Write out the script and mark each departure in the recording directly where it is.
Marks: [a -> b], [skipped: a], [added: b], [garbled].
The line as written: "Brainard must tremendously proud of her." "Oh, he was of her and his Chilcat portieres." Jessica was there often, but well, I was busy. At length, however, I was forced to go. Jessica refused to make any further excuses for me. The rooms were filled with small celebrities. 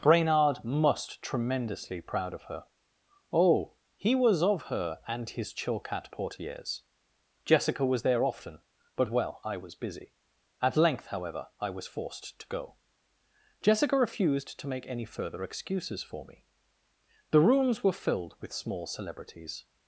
"Brainard must tremendously proud of her." "Oh, he was of her and his Chilcat portieres." Jessica was there often, but well, I was busy. At length, however, I was forced to go. Jessica refused to make any further excuses for me. The rooms were filled with small celebrities.